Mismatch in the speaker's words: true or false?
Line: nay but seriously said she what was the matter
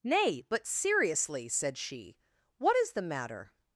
true